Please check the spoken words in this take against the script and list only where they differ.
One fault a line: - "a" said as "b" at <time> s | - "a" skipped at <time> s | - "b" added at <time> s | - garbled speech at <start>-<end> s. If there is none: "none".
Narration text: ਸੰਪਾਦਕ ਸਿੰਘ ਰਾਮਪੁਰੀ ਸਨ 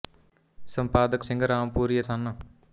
none